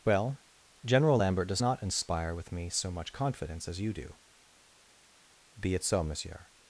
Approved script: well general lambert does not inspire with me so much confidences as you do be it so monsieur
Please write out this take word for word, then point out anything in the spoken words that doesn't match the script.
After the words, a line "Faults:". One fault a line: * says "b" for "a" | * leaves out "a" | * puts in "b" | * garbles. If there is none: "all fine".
well general lambert does not inspire with me so much confidence as you do be it so monsieur
Faults:
* says "confidence" for "confidences"